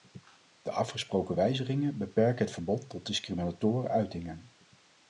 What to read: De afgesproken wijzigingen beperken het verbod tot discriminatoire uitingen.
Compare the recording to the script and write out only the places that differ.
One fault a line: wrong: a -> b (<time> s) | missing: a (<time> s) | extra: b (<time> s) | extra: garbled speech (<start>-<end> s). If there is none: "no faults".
no faults